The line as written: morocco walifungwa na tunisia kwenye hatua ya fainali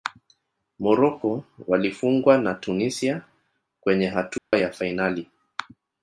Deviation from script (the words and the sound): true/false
true